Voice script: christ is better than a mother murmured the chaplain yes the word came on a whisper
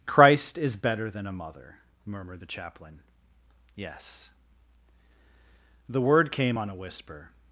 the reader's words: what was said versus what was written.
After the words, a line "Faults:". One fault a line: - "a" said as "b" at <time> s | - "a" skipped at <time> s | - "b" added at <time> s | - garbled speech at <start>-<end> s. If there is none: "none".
christ is better than a mother murmured the chaplain yes the word came on a whisper
Faults:
none